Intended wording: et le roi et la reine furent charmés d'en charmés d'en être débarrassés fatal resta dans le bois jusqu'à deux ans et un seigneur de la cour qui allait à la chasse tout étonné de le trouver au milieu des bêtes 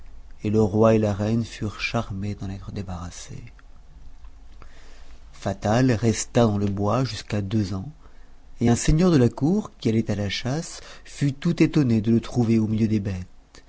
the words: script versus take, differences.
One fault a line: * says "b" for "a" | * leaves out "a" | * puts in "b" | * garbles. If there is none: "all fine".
* leaves out "charmés d'en"
* puts in "fut"